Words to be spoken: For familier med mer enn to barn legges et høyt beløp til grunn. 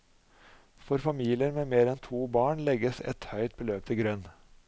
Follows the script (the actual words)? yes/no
yes